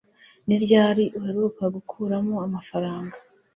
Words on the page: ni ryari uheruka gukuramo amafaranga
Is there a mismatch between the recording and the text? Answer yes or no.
no